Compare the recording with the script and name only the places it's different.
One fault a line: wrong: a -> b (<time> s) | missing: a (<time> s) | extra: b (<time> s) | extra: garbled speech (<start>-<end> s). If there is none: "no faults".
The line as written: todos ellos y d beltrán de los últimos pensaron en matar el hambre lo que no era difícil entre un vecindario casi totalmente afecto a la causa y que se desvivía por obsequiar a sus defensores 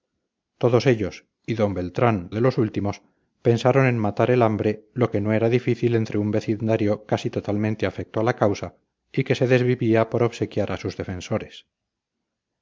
no faults